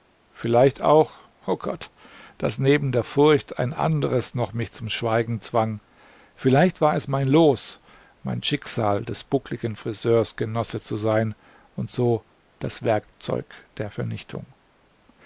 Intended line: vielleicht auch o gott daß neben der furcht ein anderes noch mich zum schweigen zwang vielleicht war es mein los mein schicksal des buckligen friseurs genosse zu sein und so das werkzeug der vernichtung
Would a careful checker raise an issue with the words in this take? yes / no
no